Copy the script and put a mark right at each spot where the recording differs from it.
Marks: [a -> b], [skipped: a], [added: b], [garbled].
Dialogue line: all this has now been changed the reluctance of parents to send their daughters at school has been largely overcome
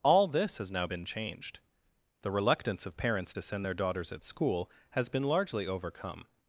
all this has now been changed the reluctance of parents to send their daughters at school has been largely overcome